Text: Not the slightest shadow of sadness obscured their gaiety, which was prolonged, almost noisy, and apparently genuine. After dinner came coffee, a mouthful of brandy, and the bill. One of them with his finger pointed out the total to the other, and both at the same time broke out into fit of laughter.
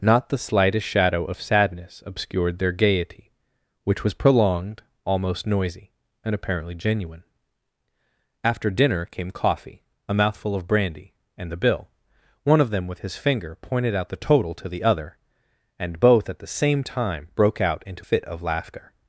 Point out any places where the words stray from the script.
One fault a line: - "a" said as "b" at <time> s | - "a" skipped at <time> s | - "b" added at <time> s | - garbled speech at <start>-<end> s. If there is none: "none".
none